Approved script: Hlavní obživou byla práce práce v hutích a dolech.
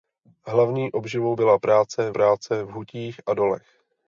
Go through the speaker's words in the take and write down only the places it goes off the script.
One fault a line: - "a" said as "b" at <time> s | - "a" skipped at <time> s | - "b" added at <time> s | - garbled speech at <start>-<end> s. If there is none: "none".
none